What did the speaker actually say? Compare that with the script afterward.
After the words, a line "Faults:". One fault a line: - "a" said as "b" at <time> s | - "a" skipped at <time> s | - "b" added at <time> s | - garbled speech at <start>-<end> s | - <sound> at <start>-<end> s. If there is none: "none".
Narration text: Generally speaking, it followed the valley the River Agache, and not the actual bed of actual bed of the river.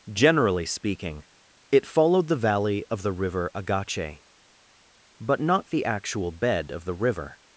Generally speaking, it followed the valley of the River Agache, but not the actual bed of the river.
Faults:
- "of" added at 2.9 s
- "and" said as "but" at 5.2 s
- "actual bed of" skipped at 6.8 s